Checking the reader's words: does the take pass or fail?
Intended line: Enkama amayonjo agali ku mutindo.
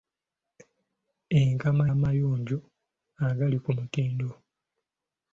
pass